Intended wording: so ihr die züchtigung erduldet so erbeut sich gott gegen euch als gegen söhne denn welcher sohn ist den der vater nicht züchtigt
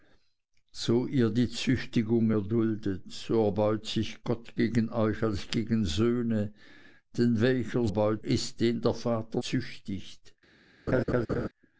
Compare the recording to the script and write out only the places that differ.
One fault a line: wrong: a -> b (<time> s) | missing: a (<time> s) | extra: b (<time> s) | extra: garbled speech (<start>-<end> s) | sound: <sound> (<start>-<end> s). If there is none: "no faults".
wrong: sohn -> erbeut (7.9 s)
missing: nicht (9.4 s)
sound: laugh (10.9-11.5 s)